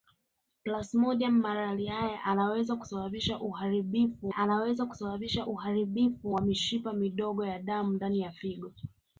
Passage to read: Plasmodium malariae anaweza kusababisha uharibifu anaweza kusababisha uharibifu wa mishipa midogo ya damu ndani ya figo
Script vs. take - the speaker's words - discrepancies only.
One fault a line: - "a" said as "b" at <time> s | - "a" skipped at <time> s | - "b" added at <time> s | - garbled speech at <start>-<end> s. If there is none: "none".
none